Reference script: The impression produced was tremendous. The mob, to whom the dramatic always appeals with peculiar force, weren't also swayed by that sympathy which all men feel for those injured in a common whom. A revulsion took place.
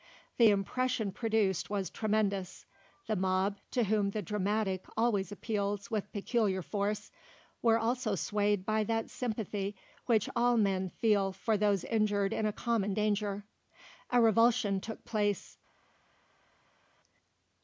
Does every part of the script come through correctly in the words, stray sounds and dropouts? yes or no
no